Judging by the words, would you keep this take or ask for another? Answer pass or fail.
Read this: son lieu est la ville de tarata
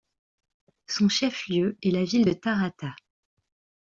fail